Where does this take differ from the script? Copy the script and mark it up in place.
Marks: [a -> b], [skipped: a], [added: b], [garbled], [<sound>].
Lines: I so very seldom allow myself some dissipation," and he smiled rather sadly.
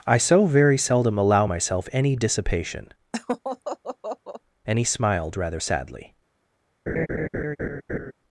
I so very seldom allow myself [some -> any] dissipation," [laugh] and he smiled rather sadly. [laugh]